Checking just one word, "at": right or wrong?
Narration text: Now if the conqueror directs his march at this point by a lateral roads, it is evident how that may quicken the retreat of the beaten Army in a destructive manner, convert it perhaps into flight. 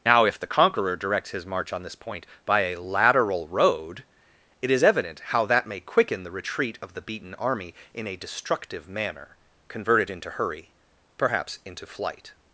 wrong